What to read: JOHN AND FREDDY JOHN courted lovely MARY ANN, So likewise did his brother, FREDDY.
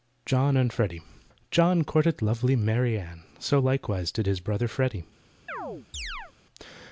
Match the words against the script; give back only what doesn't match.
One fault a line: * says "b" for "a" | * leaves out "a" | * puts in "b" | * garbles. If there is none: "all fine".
all fine